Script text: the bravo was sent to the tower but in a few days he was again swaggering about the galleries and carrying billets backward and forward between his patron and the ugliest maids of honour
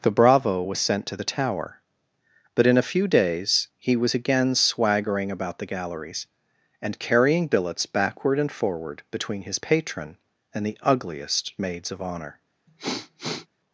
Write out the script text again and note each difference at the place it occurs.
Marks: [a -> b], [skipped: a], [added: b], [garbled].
the bravo was sent to the tower but in a few days he was again swaggering about the galleries and carrying billets backward and forward between his patron and the ugliest maids of honour